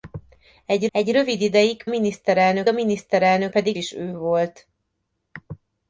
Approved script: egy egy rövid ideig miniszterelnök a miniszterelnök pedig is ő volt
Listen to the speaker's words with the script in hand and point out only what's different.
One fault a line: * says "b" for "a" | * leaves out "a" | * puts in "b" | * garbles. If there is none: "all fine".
all fine